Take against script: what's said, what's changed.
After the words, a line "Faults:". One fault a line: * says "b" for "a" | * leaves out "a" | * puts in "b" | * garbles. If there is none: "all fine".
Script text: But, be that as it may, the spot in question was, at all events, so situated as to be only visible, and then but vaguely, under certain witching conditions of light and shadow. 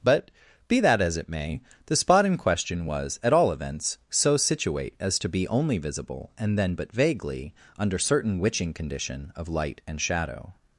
But, be that as it may, the spot in question was, at all events, so situate as to be only visible, and then but vaguely, under certain witching condition of light and shadow.
Faults:
* says "situate" for "situated"
* says "condition" for "conditions"